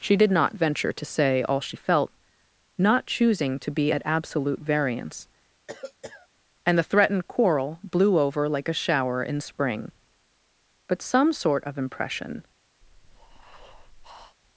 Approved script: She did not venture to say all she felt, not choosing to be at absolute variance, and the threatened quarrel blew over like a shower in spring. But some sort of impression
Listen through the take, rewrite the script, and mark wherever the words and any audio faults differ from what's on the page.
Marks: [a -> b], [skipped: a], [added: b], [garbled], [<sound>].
She did not venture to say all she felt, not choosing to be at absolute variance, [cough] and the threatened quarrel blew over like a shower in spring. But some sort of impression [breath]